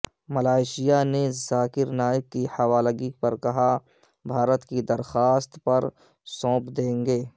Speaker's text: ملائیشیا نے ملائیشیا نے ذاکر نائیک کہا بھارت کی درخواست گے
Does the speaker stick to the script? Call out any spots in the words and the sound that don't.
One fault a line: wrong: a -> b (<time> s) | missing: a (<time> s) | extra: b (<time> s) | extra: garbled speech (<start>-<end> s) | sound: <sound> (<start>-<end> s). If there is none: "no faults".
wrong: ملائیشیا نے ذاکر نائیک -> ذاکر نائیک کی حوالگی پر (1.4 s)
extra: پر سونپ دیں (5.6 s)